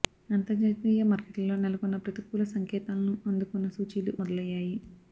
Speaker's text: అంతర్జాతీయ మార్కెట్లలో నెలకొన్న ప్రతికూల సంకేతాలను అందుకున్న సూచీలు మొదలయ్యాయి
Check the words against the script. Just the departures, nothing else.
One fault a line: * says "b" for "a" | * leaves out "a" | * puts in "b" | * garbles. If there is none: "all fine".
all fine